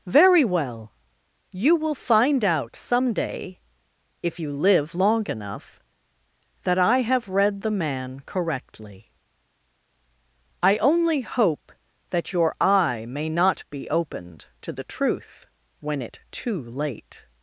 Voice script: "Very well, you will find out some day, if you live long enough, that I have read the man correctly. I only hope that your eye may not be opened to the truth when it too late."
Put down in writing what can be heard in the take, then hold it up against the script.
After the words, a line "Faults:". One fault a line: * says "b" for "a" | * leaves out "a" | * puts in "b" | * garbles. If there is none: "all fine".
"Very well, you will find out some day, if you live long enough, that I have read the man correctly. I only hope that your eye may not be opened to the truth when it too late."
Faults:
all fine